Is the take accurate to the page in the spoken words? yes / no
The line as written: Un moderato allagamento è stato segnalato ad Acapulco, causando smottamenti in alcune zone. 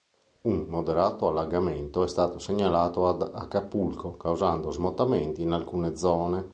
yes